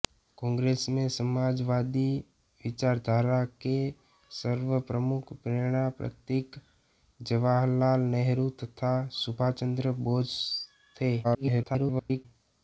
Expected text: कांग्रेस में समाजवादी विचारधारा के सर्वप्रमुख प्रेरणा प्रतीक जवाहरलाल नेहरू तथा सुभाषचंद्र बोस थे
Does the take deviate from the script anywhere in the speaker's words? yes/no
yes